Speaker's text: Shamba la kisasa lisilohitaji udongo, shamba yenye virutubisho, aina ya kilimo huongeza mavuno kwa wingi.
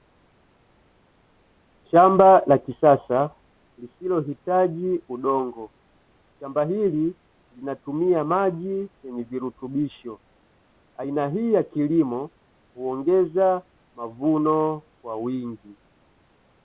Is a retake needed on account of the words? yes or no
yes